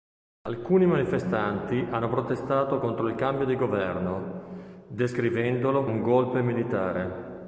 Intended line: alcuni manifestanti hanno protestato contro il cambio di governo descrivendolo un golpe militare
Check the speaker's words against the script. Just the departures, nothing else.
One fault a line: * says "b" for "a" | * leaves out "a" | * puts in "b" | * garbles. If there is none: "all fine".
all fine